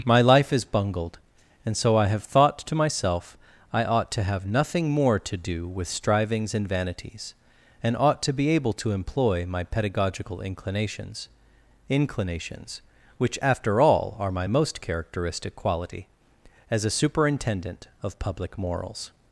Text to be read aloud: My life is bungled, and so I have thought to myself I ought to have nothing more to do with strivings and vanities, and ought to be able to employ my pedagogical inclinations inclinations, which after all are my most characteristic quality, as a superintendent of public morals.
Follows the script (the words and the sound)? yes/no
yes